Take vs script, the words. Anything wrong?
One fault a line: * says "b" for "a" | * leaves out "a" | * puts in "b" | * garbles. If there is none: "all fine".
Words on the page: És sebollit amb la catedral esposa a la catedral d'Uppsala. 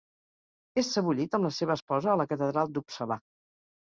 * says "seva" for "catedral"